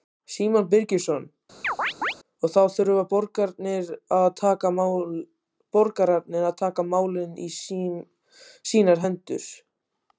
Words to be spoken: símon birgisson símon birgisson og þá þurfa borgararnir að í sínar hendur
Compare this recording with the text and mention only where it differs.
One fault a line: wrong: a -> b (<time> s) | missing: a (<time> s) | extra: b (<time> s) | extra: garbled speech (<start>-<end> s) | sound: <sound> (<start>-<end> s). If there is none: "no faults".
missing: símon birgisson (1.2 s)
sound: chirp (1.6-2.1 s)
extra: taka málin (6.6 s)